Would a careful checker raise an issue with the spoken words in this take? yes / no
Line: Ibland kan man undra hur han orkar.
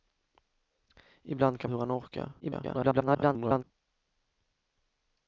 yes